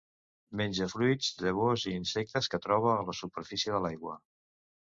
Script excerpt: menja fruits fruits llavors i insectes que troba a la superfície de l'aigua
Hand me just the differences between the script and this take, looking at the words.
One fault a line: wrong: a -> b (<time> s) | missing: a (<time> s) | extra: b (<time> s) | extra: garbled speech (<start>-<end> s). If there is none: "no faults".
missing: fruits (1.3 s)